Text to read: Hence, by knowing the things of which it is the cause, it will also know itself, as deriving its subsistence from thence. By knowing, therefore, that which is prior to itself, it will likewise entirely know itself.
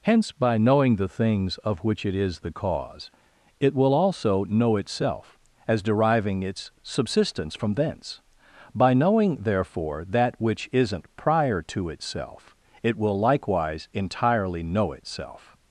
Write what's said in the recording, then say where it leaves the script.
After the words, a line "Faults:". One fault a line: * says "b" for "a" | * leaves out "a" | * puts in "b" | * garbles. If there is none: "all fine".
Hence, by knowing the things of which it is the cause, it will also know itself, as deriving its subsistence from thence. By knowing, therefore, that which isn't prior to itself, it will likewise entirely know itself.
Faults:
* says "isn't" for "is"